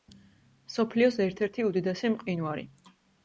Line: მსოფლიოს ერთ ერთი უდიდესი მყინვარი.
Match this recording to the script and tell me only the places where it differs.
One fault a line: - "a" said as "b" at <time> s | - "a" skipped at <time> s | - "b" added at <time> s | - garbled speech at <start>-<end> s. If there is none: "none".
none